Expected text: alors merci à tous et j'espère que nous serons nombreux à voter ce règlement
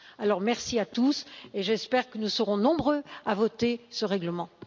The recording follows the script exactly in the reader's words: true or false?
true